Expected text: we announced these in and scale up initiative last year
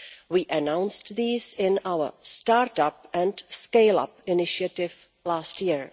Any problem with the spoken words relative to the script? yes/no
yes